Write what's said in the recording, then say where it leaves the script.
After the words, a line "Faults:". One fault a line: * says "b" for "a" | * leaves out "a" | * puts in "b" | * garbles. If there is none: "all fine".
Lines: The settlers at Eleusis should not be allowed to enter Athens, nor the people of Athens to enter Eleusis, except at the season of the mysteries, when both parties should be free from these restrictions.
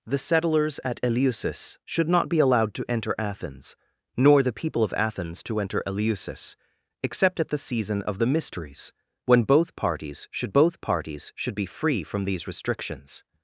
The settlers at Eleusis should not be allowed to enter Athens, nor the people of Athens to enter Eleusis, except at the season of the mysteries, when both parties should both parties should be free from these restrictions.
Faults:
* puts in "both parties should"